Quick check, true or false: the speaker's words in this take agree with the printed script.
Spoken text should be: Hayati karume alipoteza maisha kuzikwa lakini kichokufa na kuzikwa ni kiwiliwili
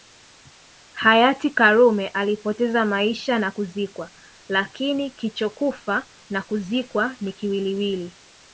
false